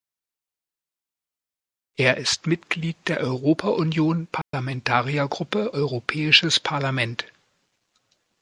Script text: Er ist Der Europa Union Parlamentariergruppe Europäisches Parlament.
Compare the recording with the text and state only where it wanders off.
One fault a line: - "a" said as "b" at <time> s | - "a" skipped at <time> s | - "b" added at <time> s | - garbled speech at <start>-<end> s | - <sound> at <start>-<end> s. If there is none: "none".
- "Mitglied" added at 2.5 s
- dropout at 4.4-4.5 s